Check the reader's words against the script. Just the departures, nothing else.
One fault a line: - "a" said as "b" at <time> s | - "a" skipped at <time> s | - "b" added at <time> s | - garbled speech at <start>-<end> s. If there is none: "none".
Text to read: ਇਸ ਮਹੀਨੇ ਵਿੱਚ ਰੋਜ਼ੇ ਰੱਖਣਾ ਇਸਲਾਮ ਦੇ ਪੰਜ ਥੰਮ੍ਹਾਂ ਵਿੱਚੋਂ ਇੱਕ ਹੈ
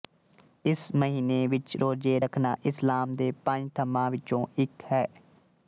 none